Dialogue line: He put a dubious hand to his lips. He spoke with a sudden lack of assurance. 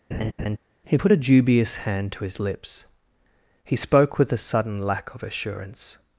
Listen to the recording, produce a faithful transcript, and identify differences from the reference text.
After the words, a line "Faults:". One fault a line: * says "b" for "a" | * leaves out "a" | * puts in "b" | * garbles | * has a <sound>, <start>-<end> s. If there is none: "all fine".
He put a dubious hand to his lips. He spoke with a sudden lack of assurance.
Faults:
* has a laugh, 0.1-0.6 s